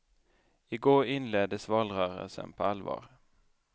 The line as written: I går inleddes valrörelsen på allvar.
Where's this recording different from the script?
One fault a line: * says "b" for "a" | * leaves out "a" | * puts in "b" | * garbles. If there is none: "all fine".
all fine